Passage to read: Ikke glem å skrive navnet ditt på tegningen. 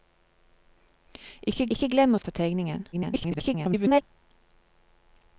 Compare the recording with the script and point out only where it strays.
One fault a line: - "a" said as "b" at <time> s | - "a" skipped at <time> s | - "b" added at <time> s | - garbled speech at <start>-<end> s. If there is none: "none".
- "ikke" added at 1.7 s
- "skrive navnet ditt" skipped at 2.2 s
- garbled speech at 2.9-4.0 s